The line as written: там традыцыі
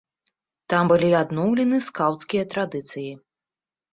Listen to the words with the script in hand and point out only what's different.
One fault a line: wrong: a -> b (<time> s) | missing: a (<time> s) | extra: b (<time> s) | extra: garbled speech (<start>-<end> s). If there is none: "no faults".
extra: былі адноўлены скаўцкія (0.9 s)